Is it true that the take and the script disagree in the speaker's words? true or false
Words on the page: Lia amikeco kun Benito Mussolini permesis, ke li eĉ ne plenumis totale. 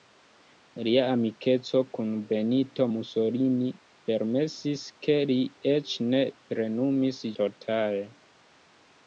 false